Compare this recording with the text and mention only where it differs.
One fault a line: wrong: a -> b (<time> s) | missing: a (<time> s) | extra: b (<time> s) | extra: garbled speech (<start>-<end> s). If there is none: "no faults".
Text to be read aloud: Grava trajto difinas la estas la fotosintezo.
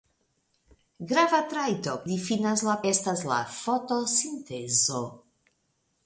no faults